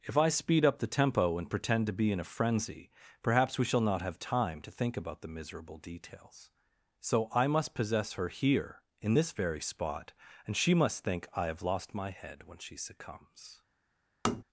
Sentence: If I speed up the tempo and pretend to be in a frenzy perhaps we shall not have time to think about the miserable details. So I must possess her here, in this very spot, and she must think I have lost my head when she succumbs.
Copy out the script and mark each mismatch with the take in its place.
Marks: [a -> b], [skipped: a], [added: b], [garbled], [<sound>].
If I speed up the tempo and pretend to be in a frenzy perhaps we shall not have time to think about the miserable details. So I must possess her here, in this very spot, and she must think I have lost my head when she succumbs. [tap]